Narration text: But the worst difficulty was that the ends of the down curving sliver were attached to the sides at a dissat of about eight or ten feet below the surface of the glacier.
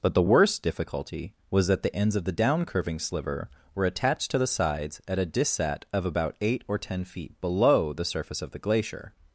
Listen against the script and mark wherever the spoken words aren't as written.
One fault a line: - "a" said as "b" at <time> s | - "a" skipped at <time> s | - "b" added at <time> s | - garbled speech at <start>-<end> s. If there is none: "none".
none